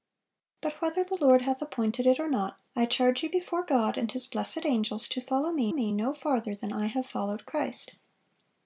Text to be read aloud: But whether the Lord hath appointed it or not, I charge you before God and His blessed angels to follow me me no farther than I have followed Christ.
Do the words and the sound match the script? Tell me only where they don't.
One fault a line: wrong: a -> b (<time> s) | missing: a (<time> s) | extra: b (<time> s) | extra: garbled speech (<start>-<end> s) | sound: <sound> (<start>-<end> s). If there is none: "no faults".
no faults